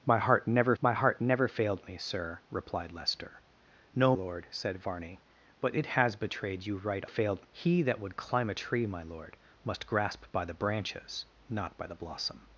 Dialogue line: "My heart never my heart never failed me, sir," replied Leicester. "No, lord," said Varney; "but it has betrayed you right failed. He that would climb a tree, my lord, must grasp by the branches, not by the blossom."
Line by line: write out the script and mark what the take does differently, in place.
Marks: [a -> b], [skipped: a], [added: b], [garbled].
"My heart never my heart never failed me, sir," replied Leicester. "No, lord," said Varney; "but it has betrayed you right failed. He that would climb a tree, my lord, must grasp by the branches, not by the blossom."